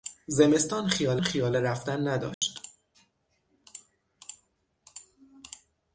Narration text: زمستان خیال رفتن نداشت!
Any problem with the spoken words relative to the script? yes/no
yes